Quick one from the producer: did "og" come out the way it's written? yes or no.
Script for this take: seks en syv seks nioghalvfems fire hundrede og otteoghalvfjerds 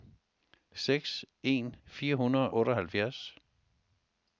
no